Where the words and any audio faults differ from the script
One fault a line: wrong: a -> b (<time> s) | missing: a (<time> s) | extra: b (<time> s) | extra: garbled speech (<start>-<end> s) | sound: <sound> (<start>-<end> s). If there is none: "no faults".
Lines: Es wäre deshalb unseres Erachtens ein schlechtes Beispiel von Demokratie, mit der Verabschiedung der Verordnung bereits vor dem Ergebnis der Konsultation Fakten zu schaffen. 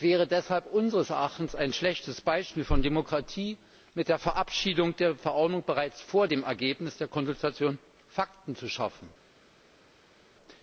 no faults